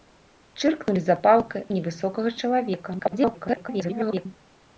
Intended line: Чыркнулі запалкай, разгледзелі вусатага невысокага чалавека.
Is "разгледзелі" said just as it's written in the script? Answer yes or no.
no